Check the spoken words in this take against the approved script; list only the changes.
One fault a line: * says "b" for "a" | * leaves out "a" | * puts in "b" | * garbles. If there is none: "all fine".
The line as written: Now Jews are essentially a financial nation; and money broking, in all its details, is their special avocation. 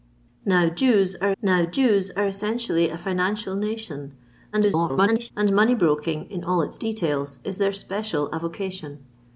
* puts in "now Jews are"
* garbles